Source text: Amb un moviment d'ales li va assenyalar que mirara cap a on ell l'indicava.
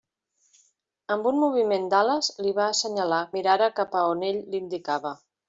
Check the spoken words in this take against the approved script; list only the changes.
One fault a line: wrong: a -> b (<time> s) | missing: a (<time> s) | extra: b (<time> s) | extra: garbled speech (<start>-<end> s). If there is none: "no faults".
missing: que (3.2 s)